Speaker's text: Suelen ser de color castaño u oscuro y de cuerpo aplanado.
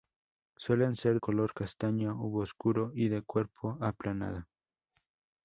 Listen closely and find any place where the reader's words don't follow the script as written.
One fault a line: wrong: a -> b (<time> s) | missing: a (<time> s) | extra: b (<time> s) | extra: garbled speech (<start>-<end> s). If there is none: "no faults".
missing: de (1.2 s)